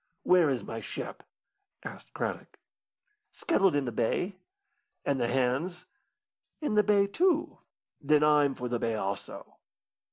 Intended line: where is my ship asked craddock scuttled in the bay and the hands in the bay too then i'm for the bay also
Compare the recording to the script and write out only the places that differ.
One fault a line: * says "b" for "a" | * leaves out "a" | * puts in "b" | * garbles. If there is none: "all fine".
all fine